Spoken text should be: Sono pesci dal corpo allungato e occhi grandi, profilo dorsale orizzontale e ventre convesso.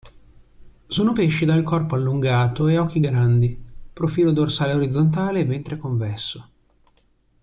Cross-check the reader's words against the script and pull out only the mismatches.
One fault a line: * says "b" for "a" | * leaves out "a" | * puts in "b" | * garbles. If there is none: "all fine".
all fine